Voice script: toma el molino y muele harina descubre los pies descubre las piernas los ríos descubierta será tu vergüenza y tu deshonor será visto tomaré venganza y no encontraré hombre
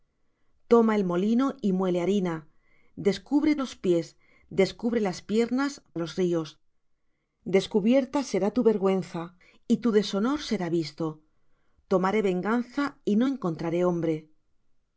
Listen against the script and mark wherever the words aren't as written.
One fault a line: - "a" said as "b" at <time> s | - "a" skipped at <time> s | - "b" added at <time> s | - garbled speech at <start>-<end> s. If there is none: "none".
none